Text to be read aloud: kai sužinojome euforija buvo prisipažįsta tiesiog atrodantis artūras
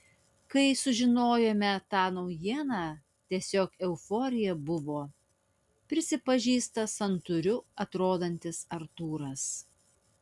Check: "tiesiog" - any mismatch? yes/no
yes